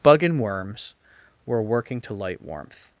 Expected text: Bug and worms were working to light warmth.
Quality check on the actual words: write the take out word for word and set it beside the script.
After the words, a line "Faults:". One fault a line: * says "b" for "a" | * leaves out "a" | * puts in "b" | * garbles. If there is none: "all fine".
Bug and worms were working to light warmth.
Faults:
all fine